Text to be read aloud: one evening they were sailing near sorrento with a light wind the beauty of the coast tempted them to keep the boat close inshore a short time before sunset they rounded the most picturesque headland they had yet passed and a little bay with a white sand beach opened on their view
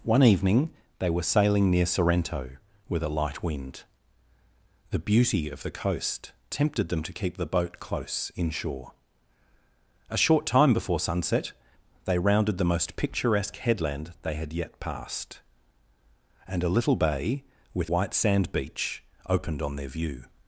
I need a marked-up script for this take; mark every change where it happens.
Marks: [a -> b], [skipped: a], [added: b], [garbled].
one evening they were sailing near sorrento with a light wind the beauty of the coast tempted them to keep the boat close inshore a short time before sunset they rounded the most picturesque headland they had yet passed and a little bay with [skipped: a] white sand beach opened on their view